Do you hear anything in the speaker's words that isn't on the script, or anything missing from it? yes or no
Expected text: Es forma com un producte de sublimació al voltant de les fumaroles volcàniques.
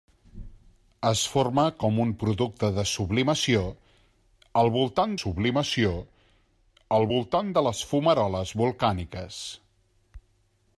yes